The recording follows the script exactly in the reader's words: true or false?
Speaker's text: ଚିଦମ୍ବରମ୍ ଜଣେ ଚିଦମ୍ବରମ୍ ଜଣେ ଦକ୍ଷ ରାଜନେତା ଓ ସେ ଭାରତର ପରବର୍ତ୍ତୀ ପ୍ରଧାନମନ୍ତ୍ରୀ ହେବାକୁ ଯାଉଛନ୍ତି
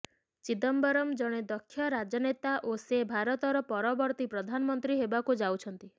false